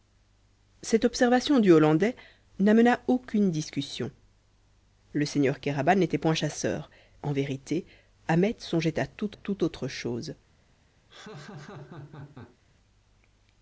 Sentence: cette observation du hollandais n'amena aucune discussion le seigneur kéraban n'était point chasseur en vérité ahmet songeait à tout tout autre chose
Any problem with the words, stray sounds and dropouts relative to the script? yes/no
yes